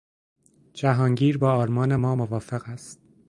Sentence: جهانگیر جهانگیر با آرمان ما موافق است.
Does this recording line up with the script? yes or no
no